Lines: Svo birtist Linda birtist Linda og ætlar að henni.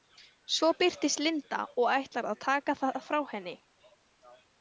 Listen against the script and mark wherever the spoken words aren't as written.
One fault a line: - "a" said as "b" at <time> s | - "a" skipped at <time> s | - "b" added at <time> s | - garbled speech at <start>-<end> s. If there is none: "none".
- "birtist Linda" skipped at 1.6 s
- "taka það frá" added at 2.5 s